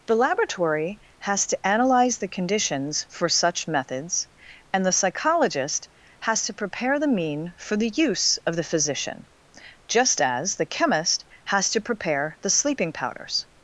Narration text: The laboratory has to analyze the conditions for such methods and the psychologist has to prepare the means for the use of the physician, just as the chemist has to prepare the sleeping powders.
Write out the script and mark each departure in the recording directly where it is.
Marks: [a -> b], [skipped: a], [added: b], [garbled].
The laboratory has to analyze the conditions for such methods and the psychologist has to prepare the [means -> mean] for the use of the physician, just as the chemist has to prepare the sleeping powders.